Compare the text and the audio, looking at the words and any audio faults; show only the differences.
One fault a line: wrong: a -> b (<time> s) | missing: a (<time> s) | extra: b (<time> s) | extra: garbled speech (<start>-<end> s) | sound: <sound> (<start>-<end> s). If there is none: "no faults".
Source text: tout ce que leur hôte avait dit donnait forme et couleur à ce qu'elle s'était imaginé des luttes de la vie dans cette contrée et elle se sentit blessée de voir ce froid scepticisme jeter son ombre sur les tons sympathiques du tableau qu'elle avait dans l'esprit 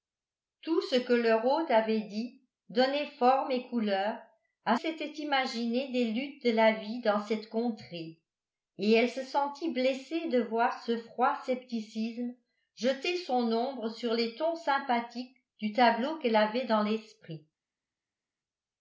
missing: ce qu'elle (4.8 s)